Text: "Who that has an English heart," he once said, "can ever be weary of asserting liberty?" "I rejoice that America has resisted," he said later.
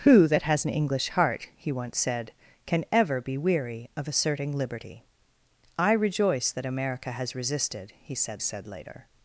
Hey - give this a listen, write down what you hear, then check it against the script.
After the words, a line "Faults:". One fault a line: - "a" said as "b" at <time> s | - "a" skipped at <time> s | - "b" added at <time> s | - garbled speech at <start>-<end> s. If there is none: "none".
"Who that has an English heart," he once said, "can ever be weary of asserting liberty?" "I rejoice that America has resisted," he said said later.
Faults:
- "said" added at 8.4 s